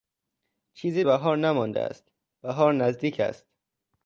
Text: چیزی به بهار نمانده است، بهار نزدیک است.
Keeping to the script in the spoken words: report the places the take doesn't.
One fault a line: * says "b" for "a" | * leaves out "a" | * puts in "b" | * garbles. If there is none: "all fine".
* leaves out "به"